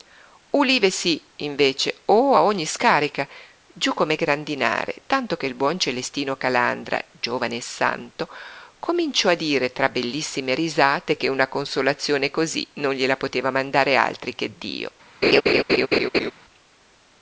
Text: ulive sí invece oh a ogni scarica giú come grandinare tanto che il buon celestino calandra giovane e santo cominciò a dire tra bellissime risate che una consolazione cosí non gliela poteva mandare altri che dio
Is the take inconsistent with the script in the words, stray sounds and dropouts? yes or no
yes